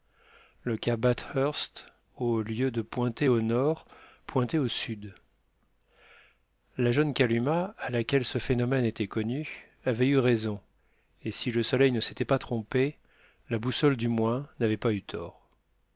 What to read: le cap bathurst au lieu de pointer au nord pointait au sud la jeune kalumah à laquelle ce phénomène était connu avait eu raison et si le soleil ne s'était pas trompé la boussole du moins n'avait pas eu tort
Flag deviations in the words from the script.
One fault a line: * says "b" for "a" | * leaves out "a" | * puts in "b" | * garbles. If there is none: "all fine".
all fine